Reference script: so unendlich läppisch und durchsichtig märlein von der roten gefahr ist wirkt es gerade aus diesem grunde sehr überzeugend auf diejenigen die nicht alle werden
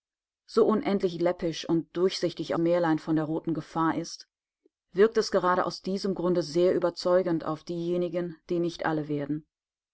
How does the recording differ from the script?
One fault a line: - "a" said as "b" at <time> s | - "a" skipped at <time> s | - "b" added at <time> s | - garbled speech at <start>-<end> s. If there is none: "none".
none